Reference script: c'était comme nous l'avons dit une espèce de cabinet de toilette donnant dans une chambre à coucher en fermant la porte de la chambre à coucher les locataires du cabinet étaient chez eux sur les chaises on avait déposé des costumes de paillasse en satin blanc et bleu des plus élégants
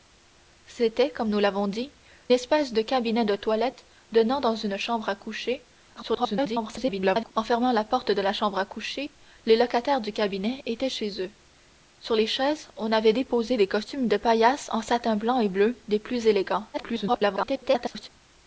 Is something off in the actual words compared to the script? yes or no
yes